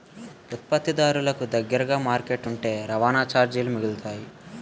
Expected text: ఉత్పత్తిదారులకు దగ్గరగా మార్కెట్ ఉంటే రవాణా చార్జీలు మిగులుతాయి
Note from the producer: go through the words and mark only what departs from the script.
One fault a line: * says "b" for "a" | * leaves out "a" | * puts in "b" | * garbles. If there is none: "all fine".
all fine